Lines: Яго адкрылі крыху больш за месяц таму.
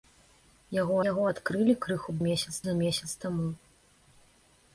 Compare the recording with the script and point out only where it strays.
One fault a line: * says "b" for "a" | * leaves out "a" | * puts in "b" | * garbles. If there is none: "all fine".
* puts in "яго"
* says "месяц" for "больш"